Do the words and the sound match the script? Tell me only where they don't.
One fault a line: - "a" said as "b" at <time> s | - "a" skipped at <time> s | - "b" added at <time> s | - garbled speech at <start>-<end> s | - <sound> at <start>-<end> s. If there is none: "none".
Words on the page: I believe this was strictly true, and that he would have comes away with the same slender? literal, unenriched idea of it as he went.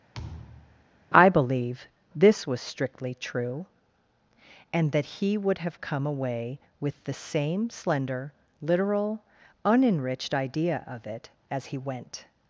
- thud at 0.1-0.8 s
- "comes" said as "come" at 5.8 s